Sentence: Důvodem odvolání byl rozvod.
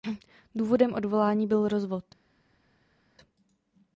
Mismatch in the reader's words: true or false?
false